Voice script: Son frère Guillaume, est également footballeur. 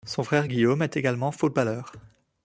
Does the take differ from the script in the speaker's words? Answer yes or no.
no